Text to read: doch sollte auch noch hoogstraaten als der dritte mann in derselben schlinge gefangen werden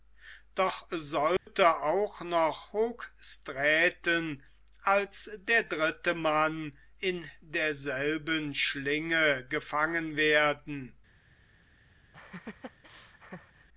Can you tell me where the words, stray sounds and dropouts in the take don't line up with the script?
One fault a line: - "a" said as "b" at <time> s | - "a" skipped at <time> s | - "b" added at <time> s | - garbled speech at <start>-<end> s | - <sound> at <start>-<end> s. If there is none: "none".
- dropout at 1.4-1.5 s
- laugh at 12.1-13.7 s